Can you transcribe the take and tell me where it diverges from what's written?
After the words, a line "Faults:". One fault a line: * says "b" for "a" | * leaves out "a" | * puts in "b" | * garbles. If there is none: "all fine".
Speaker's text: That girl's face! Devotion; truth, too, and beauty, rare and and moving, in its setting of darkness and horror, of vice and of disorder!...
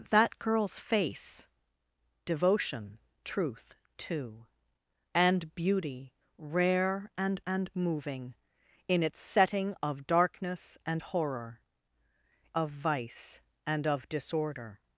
That girl's face! Devotion; truth, too, and beauty, rare and and moving, in its setting of darkness and horror, of vice and of disorder!...
Faults:
all fine